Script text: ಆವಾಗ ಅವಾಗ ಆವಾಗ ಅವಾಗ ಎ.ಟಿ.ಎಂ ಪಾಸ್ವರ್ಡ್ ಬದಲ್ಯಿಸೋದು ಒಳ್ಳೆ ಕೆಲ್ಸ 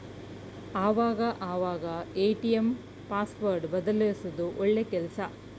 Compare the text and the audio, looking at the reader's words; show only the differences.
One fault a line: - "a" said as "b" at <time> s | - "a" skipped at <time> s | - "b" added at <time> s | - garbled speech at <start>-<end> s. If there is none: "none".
- "ಆವಾಗ ಅವಾಗ" skipped at 1.9 s